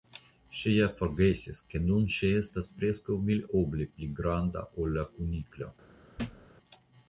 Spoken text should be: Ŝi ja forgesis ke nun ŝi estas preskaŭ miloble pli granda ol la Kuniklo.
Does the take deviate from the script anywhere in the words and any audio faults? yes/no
yes